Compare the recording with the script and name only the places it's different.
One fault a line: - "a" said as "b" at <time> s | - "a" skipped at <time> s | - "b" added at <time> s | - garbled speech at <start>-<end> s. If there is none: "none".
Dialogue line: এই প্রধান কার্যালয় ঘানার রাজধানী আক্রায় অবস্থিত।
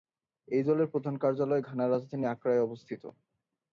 - "দলের" added at 0.6 s